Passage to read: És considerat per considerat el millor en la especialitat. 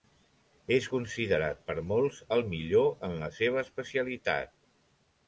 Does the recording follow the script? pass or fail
fail